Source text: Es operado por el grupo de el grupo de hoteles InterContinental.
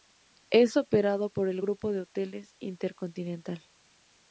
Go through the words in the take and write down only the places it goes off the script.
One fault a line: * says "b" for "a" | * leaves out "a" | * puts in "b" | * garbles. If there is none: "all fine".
* leaves out "el grupo de"